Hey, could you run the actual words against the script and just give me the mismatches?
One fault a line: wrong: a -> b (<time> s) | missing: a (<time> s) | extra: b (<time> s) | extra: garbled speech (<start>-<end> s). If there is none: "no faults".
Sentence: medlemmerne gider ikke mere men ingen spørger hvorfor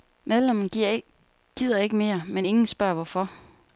no faults